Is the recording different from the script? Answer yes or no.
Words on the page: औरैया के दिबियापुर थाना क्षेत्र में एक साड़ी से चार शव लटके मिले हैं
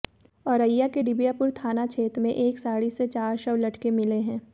no